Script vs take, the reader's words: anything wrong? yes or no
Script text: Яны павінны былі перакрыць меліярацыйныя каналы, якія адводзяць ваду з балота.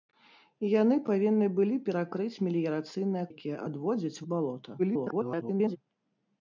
yes